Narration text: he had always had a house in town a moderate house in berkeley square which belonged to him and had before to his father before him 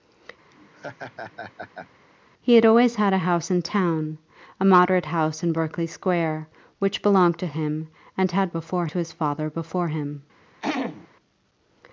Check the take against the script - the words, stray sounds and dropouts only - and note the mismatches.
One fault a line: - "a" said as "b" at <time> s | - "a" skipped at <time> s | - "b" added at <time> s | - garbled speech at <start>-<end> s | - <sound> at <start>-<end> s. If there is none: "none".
- laugh at 0.5-1.9 s
- throat clearing at 10.6-11.1 s